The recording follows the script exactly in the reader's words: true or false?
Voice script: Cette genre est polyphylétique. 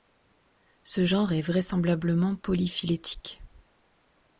false